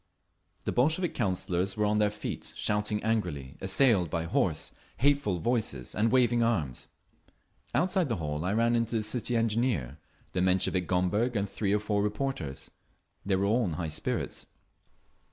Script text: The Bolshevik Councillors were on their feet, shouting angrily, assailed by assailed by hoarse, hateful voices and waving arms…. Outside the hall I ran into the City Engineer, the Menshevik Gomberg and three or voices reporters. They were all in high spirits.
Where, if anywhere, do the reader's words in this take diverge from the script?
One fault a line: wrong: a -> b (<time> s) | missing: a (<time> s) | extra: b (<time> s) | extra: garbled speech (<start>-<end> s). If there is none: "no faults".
missing: assailed by (4.2 s)
wrong: voices -> four (11.8 s)